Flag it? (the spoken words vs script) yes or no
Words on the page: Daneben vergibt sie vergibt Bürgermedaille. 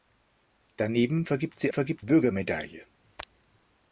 no